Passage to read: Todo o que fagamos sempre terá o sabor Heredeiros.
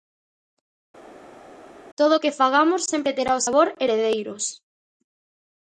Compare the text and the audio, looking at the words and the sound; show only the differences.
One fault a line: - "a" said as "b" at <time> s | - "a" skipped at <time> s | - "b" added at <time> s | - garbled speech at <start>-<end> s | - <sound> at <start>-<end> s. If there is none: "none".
none